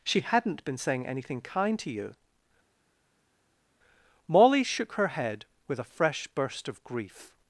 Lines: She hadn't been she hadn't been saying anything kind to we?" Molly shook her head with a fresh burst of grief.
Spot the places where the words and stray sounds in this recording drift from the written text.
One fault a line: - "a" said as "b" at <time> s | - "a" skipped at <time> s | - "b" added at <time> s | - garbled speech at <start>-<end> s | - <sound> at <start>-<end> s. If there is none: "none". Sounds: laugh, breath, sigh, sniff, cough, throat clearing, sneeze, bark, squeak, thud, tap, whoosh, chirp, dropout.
- "she hadn't been" skipped at 0.8 s
- "we" said as "you" at 1.9 s